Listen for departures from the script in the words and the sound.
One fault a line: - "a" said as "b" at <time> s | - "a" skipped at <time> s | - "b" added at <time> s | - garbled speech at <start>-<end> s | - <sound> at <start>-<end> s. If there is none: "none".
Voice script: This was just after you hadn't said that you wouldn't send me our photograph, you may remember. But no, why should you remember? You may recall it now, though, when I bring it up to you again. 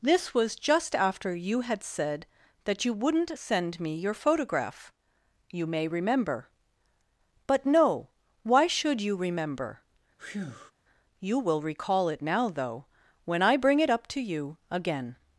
- "hadn't" said as "had" at 1.6 s
- "our" said as "your" at 3.9 s
- breath at 10.2-10.7 s
- "may" said as "will" at 11.4 s